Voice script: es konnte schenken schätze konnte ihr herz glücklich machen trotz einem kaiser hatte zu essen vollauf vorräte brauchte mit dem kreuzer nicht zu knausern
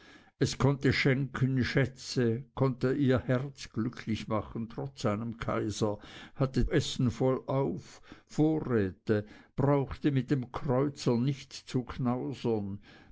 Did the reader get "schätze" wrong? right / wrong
right